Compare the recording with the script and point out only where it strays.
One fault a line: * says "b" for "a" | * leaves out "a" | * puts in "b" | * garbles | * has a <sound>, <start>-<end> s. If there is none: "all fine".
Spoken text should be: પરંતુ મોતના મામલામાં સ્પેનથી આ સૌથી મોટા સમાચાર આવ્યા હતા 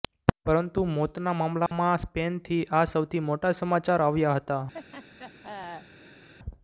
* has a dropout, 1.7-1.7 s
* has a laugh, 4.7-6.3 s